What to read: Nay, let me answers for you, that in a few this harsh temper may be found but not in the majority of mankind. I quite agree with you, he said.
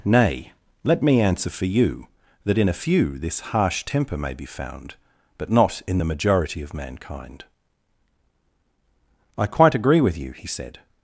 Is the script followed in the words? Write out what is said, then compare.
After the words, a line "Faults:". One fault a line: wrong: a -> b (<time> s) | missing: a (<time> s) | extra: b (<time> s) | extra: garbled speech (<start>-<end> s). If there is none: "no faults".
Nay, let me answer for you, that in a few this harsh temper may be found but not in the majority of mankind. I quite agree with you, he said.
Faults:
wrong: answers -> answer (1.2 s)